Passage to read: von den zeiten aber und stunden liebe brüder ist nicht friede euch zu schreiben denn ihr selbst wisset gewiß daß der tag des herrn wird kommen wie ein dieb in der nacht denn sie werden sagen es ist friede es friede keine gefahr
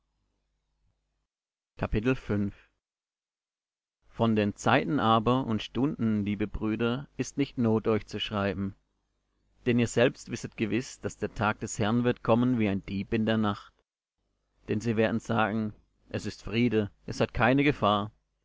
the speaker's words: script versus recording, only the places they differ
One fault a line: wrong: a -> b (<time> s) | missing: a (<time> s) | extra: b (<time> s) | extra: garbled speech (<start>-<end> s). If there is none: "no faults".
wrong: friede -> not (7.6 s)
wrong: friede -> hat (17.2 s)